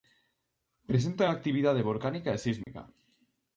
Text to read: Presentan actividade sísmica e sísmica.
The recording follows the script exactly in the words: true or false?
false